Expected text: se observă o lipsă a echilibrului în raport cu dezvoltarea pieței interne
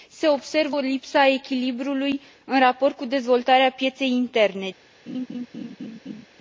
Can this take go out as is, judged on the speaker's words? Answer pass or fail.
pass